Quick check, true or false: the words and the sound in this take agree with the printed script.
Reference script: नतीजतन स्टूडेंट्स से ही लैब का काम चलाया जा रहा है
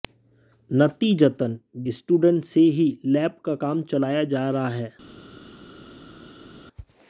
true